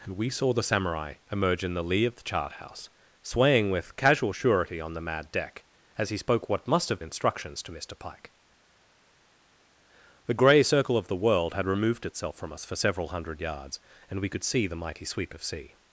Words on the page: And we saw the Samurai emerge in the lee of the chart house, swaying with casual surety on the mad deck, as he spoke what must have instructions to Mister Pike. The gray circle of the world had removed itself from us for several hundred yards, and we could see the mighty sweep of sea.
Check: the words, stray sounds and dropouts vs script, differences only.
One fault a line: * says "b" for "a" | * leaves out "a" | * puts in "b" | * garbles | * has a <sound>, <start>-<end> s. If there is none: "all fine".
all fine